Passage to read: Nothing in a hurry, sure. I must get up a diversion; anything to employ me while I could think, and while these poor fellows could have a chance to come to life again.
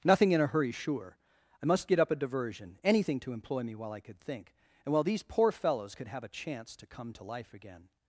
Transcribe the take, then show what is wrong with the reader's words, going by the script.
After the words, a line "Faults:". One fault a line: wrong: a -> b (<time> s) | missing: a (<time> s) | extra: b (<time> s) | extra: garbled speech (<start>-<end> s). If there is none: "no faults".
Nothing in a hurry, sure. I must get up a diversion; anything to employ me while I could think, and while these poor fellows could have a chance to come to life again.
Faults:
no faults